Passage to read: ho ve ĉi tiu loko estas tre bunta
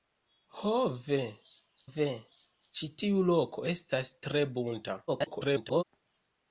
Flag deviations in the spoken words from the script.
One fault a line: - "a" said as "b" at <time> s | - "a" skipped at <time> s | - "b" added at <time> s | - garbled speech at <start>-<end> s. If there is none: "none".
- "ve" added at 1.9 s
- garbled speech at 5.1-5.8 s